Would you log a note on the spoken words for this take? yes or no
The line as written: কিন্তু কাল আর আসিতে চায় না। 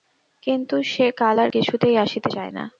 yes